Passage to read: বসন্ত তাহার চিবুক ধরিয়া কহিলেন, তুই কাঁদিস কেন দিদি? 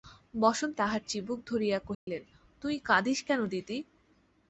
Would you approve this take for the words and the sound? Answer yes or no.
no